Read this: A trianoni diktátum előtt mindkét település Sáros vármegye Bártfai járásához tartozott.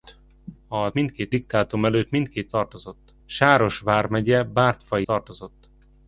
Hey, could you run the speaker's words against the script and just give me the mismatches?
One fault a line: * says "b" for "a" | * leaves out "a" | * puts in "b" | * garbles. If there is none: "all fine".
* says "mindkét" for "trianoni"
* says "tartozott" for "település"
* leaves out "járásához"